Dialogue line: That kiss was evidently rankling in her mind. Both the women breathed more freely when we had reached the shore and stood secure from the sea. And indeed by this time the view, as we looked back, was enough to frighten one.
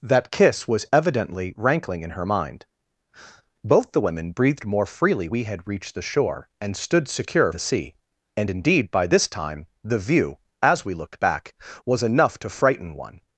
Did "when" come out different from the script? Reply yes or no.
yes